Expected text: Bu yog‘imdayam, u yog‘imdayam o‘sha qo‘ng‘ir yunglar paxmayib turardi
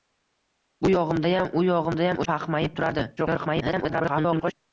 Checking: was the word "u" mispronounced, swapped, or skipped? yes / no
no